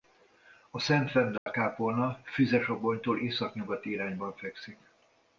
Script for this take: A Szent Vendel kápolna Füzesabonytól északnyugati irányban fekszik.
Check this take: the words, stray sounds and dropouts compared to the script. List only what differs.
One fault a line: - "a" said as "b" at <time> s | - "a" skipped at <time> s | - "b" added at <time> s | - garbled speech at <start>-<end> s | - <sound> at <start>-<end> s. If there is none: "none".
- dropout at 1.4-1.5 s